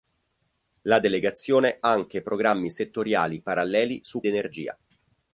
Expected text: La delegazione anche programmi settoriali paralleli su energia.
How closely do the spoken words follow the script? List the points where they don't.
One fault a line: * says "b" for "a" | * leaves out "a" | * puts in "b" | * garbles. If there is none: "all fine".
all fine